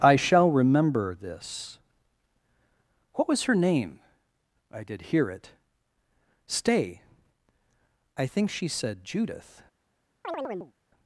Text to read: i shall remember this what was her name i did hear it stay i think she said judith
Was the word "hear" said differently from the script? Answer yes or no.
no